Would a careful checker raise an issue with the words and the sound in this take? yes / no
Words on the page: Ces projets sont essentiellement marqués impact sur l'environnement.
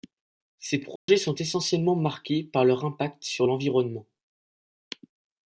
yes